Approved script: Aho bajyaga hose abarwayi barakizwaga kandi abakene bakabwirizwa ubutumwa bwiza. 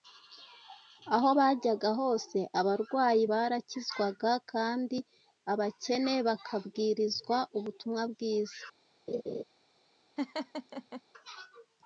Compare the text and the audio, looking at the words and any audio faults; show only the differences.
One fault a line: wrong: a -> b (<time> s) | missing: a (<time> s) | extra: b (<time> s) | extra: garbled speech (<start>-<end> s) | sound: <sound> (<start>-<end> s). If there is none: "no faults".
sound: laugh (9.1-9.4 s)
sound: laugh (10.2-11.0 s)